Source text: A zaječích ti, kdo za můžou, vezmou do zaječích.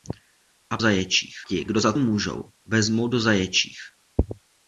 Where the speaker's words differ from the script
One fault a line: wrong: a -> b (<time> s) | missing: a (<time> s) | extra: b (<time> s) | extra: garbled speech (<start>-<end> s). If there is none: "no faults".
no faults